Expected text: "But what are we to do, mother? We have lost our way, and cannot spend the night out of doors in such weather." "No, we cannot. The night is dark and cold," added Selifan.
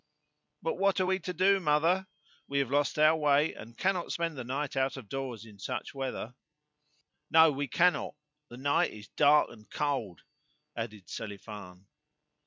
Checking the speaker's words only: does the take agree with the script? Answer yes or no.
yes